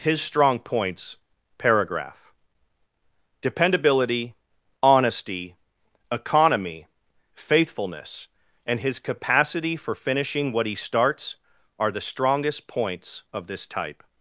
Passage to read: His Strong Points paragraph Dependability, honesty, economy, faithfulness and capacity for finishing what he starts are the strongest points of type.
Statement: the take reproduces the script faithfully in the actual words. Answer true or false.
false